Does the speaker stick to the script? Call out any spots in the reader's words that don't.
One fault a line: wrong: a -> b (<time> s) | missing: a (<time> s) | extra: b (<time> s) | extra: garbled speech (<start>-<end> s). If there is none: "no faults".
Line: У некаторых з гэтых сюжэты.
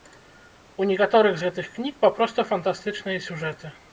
extra: кніг папросту фантастычныя (1.8 s)